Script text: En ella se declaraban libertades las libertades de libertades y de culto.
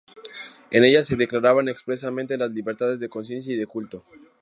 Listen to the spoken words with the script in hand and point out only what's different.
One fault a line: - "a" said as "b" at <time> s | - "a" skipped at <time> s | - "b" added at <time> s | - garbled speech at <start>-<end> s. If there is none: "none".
- "libertades" said as "expresamente" at 1.7 s
- "libertades" said as "conciencia" at 3.1 s